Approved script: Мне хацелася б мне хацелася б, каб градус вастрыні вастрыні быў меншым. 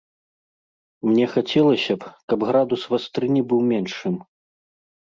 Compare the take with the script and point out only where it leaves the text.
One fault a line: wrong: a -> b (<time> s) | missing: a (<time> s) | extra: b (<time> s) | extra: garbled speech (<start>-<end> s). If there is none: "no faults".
missing: мне хацелася б (2.1 s)
missing: вастрыні (3.4 s)